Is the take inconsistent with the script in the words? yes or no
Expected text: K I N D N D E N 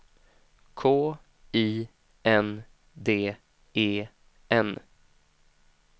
yes